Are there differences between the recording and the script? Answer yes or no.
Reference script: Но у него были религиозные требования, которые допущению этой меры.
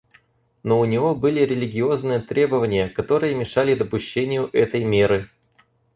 yes